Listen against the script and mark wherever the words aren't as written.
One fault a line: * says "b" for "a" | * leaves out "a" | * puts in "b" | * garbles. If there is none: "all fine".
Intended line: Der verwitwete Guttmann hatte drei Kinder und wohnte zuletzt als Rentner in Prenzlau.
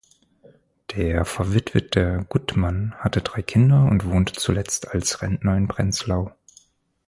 all fine